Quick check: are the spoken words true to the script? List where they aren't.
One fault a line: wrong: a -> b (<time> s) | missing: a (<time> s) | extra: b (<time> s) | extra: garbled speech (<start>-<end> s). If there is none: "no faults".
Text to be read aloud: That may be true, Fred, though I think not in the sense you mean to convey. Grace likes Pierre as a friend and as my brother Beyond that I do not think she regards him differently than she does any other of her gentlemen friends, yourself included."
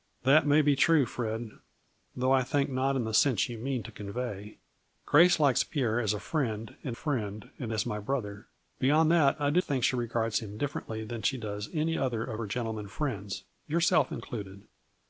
extra: friend and (6.9 s)
missing: not (9.6 s)